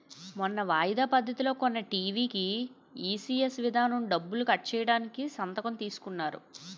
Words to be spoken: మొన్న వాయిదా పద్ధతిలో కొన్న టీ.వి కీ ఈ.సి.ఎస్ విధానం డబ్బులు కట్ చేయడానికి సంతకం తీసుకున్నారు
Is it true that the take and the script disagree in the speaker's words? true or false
false